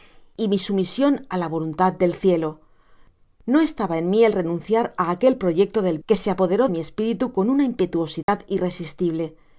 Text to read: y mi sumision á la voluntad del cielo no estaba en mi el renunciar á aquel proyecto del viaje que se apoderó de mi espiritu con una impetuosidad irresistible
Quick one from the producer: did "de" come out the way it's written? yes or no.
no